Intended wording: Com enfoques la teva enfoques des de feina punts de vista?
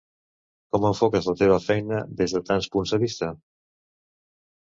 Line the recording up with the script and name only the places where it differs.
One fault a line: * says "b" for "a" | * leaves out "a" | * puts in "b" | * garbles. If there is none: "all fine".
* says "feina" for "enfoques"
* says "tants" for "feina"